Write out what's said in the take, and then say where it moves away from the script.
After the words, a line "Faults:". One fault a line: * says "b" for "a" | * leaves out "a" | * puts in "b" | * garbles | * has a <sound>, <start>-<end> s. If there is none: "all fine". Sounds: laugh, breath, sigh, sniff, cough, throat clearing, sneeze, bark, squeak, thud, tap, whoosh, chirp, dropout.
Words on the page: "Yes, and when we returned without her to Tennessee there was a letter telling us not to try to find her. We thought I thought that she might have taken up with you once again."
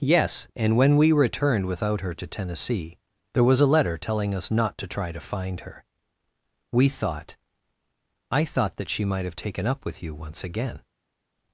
"Yes, and when we returned without her to Tennessee there was a letter telling us not to try to find her. We thought I thought that she might have taken up with you once again."
Faults:
all fine